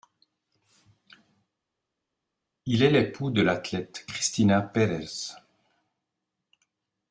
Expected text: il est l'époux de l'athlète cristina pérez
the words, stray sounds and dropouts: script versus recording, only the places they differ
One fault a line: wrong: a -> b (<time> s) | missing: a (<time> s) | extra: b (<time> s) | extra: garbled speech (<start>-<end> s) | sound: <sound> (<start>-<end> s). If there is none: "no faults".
no faults